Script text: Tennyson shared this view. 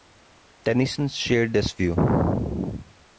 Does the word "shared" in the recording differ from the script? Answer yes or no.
no